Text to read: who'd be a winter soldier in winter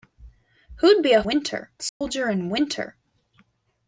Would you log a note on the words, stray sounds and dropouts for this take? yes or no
yes